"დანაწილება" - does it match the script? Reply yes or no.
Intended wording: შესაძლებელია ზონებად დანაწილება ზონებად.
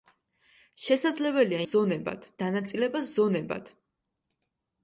yes